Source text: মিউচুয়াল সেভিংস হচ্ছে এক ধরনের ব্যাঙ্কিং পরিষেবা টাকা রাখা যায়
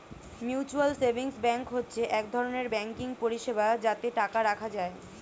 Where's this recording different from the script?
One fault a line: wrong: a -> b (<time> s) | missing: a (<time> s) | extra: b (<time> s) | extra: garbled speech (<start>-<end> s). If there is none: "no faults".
extra: ব্যাঙ্ক (1.4 s)
extra: যাতে (3.8 s)